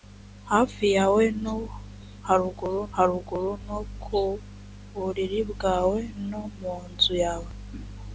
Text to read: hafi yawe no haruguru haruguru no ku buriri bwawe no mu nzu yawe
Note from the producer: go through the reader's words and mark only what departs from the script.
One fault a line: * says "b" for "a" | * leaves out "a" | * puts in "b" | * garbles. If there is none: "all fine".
all fine